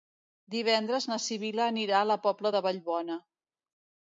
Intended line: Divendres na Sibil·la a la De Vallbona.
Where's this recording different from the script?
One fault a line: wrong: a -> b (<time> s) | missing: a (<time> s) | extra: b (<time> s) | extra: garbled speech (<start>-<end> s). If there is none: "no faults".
extra: anirà (1.7 s)
extra: Pobla (2.2 s)